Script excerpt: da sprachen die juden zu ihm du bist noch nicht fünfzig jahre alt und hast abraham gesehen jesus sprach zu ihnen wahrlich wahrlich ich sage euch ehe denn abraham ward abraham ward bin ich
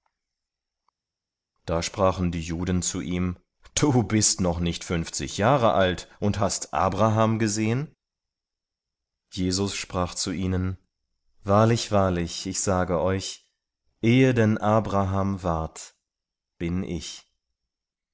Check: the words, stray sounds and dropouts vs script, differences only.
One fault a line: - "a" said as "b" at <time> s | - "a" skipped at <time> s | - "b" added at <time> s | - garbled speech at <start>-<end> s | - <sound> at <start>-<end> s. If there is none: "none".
- "abraham ward" skipped at 15.9 s